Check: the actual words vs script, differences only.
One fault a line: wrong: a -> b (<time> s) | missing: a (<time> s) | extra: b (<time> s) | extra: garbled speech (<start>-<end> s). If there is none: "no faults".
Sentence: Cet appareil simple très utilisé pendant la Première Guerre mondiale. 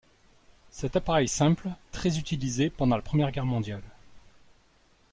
no faults